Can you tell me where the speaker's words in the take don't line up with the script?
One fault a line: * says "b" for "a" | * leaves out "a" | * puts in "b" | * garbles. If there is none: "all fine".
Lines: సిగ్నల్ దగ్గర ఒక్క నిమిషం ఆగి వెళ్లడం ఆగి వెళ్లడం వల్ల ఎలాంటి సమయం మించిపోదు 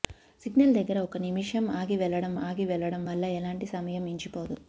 all fine